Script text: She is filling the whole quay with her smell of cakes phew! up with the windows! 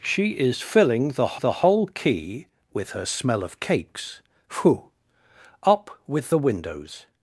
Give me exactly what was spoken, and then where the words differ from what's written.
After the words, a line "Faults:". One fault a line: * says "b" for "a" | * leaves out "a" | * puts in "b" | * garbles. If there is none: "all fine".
She is filling the the whole quay with her smell of cakes phew! up with the windows!
Faults:
* puts in "the"